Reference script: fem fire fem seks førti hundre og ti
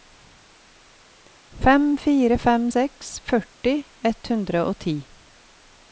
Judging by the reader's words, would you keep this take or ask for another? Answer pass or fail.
fail